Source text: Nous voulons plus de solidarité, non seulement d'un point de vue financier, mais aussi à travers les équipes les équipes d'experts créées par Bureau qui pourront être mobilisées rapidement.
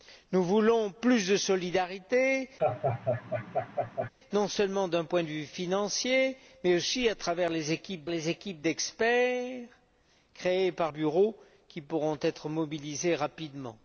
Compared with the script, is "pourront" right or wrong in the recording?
right